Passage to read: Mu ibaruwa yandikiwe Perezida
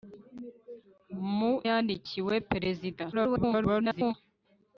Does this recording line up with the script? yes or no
no